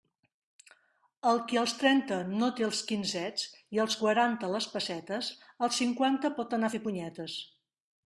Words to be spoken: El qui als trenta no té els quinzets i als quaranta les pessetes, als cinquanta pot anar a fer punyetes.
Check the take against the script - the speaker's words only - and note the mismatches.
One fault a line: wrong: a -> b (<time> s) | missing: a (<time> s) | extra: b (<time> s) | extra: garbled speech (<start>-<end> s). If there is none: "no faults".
no faults